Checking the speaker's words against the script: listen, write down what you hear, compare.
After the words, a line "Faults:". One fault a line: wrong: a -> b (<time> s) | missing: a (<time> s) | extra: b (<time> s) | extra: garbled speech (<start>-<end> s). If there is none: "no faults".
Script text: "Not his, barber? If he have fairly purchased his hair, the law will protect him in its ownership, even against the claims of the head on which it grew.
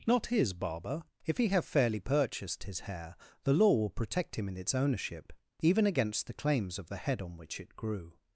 "Not his, barber? If he have fairly purchased his hair, the law will protect him in its ownership, even against the claims of the head on which it grew.
Faults:
no faults